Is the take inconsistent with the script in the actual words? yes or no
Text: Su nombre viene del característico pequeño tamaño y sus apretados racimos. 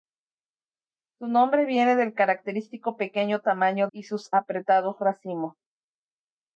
no